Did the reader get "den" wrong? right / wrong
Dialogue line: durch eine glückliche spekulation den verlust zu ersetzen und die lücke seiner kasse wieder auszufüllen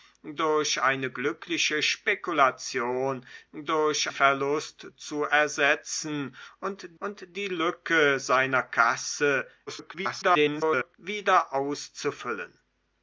wrong